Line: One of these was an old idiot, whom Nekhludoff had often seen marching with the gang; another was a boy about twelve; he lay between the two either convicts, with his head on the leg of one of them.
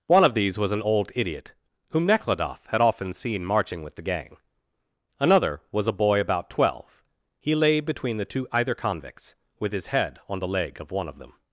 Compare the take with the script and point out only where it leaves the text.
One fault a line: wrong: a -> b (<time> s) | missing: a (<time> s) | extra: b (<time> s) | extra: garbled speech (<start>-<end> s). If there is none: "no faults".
no faults